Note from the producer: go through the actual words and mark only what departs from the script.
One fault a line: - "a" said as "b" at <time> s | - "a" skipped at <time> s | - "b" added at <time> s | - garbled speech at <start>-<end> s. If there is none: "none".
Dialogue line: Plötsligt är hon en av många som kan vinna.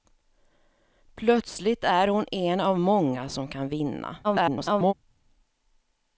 - garbled speech at 4.2-4.9 s